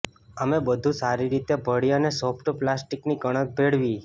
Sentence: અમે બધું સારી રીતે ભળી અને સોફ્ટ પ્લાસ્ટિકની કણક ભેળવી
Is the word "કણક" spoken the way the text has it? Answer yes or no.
yes